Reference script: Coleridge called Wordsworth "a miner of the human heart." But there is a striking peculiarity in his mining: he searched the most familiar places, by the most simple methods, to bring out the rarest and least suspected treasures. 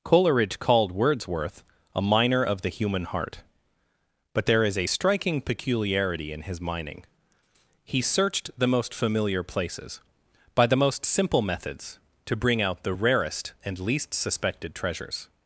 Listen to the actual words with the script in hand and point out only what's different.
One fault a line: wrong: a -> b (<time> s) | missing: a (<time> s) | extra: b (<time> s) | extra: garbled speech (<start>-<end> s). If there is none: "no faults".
no faults